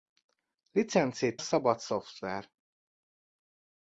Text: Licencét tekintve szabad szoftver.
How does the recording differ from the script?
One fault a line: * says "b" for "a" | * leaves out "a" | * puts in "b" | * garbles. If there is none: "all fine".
* leaves out "tekintve"